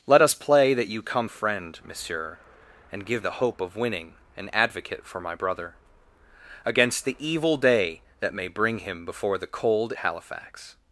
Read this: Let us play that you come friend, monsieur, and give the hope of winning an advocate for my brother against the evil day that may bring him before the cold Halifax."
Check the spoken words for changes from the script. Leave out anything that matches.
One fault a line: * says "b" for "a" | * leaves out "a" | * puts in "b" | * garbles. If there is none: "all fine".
all fine